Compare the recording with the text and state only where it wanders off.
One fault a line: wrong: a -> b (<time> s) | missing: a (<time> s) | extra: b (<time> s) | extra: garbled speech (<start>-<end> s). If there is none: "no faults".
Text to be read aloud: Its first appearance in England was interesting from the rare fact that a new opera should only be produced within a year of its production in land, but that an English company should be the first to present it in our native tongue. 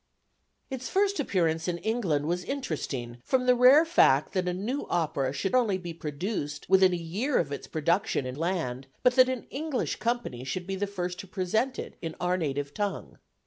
no faults